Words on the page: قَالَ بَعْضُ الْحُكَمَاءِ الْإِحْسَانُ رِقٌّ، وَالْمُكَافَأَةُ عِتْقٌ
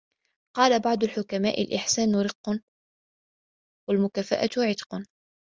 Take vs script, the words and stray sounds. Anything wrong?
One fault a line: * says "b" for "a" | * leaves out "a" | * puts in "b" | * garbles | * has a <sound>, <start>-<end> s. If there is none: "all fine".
all fine